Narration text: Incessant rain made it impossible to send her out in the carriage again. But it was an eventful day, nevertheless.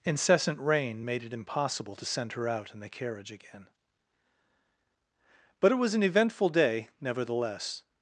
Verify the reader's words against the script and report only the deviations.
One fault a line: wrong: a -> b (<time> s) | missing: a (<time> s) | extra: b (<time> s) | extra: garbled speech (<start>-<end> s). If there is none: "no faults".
no faults